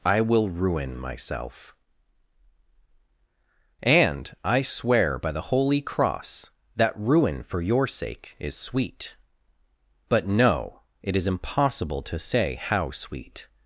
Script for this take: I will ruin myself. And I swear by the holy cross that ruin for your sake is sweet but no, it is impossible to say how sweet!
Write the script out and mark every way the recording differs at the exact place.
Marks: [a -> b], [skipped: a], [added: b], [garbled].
I will ruin myself. And I swear by the holy cross that ruin for your sake is sweet but no, it is impossible to say how sweet!